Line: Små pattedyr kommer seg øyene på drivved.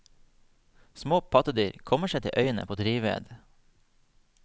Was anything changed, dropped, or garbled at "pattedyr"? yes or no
no